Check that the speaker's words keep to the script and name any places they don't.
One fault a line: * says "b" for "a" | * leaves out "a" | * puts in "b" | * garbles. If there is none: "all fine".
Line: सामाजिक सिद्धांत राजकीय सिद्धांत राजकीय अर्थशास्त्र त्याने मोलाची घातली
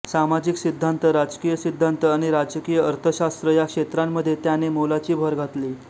* puts in "आणि"
* puts in "या क्षेत्रांमध्ये"
* puts in "भर"